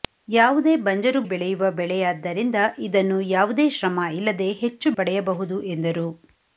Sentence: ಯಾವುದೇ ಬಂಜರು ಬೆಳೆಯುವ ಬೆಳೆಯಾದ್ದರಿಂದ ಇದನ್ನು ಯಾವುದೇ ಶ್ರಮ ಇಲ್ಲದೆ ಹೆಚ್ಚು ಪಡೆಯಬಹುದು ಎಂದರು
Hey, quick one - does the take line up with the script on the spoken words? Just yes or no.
yes